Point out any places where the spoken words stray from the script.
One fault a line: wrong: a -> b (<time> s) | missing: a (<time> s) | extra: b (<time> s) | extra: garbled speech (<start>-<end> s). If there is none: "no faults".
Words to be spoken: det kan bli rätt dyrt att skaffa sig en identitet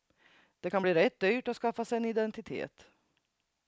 no faults